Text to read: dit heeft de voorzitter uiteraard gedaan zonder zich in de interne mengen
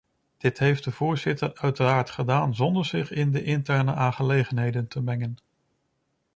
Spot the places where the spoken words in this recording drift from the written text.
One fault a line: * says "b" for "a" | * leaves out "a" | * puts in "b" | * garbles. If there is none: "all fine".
* puts in "aangelegenheden te"